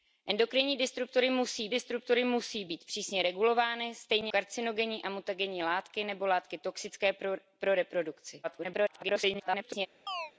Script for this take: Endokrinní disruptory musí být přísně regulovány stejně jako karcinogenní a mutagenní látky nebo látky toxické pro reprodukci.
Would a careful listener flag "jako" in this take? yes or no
yes